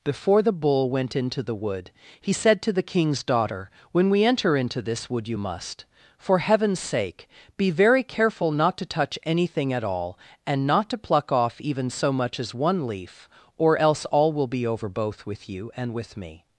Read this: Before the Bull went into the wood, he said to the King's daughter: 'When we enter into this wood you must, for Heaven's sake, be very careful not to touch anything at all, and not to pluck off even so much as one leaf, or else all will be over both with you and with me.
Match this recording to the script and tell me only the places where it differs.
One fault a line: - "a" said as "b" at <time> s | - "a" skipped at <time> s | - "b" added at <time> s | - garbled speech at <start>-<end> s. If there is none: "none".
none